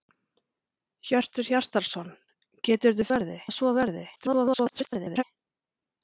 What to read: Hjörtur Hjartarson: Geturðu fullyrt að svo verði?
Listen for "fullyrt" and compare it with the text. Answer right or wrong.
wrong